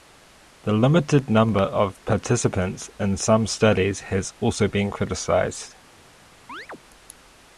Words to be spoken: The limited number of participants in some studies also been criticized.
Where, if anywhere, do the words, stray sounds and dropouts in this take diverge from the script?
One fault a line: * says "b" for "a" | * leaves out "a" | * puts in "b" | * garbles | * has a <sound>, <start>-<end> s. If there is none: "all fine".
* puts in "has"
* has a chirp, 6.5-6.8 s